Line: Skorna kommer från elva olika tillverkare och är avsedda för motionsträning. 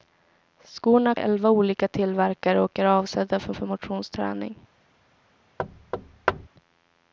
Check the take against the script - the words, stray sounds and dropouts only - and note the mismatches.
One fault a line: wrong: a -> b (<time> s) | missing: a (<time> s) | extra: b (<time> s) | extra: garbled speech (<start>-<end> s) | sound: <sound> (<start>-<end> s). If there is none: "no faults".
missing: kommer från (1.1 s)
extra: för (3.5 s)
sound: thud (5.6-6.5 s)